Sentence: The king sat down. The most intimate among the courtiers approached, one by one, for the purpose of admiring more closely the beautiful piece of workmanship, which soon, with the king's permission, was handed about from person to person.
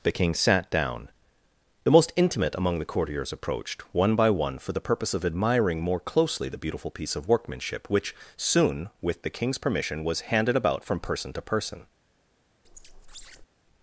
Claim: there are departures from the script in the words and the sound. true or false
true